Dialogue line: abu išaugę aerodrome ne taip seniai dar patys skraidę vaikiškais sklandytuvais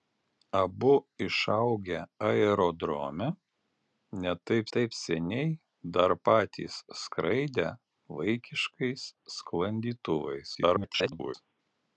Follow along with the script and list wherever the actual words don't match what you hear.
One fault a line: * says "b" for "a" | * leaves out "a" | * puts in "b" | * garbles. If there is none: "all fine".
* puts in "taip"
* garbles